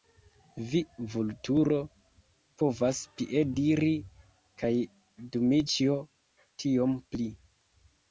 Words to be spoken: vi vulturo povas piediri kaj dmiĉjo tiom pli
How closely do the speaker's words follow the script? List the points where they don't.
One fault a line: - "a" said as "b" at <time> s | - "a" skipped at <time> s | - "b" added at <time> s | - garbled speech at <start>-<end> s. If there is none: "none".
none